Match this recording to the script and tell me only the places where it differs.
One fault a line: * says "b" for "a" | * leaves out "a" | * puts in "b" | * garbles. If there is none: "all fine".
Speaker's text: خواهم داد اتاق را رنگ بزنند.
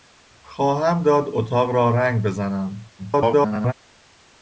* garbles